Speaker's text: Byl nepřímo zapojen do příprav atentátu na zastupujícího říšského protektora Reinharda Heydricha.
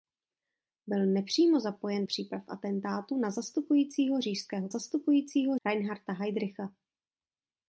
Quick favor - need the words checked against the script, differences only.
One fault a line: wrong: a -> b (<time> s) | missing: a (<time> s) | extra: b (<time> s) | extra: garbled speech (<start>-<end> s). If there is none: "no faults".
missing: do (2.0 s)
wrong: protektora -> zastupujícího (4.7 s)